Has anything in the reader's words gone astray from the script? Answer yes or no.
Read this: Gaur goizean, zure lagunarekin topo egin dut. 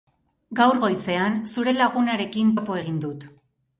no